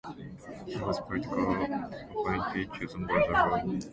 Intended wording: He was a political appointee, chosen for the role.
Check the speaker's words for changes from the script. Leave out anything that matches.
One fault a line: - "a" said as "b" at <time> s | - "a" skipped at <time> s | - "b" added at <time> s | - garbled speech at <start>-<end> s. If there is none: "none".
none